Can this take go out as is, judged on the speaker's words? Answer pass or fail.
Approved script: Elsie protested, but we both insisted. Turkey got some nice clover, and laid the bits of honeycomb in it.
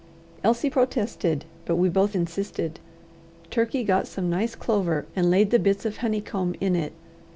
pass